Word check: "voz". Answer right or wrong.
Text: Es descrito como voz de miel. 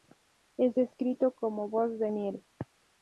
right